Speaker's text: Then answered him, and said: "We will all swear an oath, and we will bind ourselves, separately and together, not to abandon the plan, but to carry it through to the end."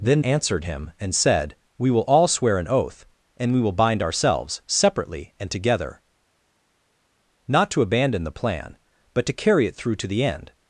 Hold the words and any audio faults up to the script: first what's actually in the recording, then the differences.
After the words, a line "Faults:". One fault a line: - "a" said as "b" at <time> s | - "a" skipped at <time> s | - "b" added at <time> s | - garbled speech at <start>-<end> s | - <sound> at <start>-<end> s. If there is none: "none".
Then answered him, and said: "We will all swear an oath, and we will bind ourselves, separately and together, not to abandon the plan, but to carry it through to the end."
Faults:
none